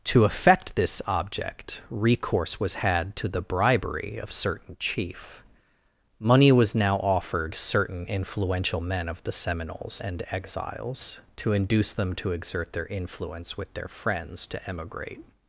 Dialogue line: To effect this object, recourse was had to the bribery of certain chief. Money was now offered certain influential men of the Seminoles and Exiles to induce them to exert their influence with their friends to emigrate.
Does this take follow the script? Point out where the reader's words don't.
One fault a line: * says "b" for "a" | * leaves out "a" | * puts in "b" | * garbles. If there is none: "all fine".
all fine